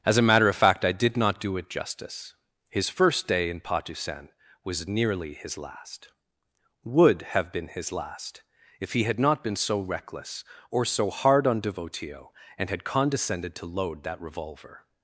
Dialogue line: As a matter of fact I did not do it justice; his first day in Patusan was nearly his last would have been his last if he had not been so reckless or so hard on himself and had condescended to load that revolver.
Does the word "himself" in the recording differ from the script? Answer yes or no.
yes